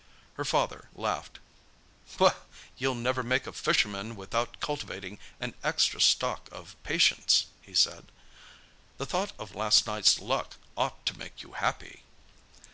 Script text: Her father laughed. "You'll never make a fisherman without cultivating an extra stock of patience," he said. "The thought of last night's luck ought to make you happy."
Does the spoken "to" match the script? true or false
true